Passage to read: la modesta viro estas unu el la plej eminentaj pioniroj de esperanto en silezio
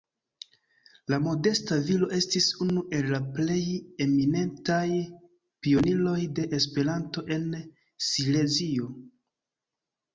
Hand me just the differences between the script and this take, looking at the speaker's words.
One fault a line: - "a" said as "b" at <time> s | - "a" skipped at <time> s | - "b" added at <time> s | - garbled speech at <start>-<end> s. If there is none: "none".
- "estas" said as "estis" at 2.2 s